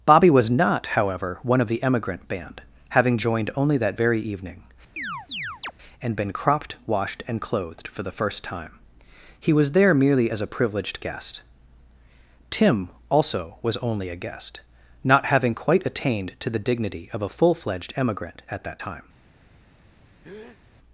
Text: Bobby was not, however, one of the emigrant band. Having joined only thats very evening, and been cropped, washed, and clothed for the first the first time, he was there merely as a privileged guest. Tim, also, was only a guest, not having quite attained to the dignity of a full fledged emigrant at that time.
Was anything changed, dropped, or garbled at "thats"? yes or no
yes